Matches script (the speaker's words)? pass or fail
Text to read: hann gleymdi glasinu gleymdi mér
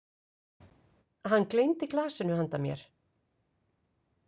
fail